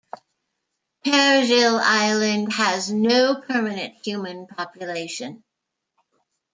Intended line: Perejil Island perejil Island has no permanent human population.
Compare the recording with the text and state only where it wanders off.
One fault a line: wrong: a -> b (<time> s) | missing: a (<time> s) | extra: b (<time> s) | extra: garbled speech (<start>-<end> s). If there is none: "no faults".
missing: perejil Island (2.5 s)